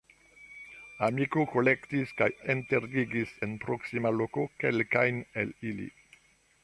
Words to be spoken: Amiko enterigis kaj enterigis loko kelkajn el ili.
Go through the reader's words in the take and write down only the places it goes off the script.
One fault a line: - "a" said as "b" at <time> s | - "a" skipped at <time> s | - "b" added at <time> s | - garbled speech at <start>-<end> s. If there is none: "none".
- "enterigis" said as "kolektis" at 1.5 s
- "en proksima" added at 3.5 s